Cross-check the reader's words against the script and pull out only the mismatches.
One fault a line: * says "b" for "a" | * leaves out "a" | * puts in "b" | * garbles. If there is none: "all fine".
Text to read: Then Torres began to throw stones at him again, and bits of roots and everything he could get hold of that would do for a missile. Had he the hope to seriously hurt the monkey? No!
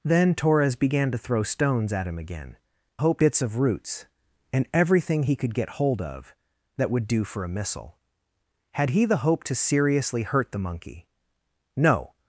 * says "hope" for "and"